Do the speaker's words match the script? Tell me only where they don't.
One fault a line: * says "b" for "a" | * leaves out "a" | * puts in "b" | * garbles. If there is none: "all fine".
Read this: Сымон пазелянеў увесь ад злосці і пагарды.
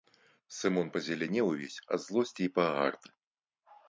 all fine